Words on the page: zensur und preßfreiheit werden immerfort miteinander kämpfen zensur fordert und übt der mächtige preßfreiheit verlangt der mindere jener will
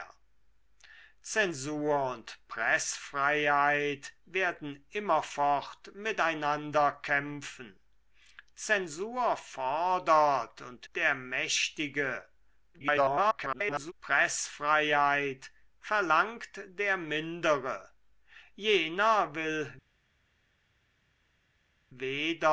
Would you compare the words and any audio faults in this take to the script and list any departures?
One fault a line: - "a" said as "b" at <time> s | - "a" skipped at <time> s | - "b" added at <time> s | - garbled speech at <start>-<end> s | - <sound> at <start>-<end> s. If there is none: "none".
- "übt" skipped at 10.9 s
- garbled speech at 12.7-13.9 s